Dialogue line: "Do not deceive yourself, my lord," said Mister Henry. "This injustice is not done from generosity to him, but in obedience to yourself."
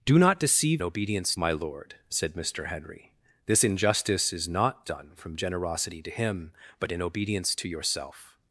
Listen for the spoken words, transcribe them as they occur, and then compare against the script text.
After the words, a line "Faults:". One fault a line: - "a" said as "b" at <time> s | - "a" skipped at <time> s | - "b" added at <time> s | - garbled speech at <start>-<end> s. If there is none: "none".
"Do not deceive obedience, my lord," said Mister Henry. "This injustice is not done from generosity to him, but in obedience to yourself."
Faults:
- "yourself" said as "obedience" at 0.8 s